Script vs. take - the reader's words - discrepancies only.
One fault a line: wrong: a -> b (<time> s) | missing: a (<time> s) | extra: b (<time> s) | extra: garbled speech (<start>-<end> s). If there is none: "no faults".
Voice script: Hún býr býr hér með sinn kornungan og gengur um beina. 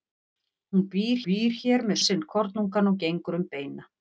no faults